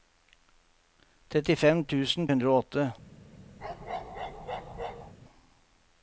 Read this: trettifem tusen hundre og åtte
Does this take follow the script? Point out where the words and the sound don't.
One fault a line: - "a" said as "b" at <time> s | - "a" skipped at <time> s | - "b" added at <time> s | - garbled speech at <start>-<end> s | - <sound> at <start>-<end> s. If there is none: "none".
- bark at 3.6-5.1 s